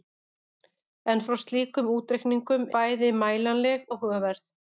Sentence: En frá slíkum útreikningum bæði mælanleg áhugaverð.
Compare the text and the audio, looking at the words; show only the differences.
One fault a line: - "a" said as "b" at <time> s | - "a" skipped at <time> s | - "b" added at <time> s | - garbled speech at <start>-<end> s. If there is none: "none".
none